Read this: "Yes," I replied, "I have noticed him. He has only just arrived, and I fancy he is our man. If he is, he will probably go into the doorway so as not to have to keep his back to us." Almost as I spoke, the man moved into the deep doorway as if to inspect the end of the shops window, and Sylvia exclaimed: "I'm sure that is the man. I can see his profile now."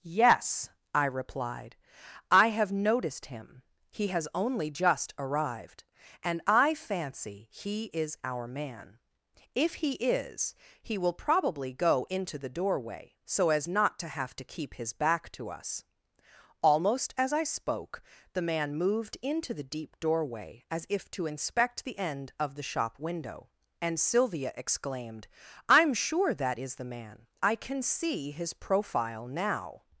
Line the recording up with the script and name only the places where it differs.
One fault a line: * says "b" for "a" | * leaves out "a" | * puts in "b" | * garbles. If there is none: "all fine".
* says "shop" for "shops"